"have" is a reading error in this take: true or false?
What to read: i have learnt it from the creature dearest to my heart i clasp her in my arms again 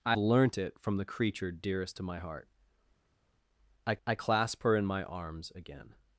true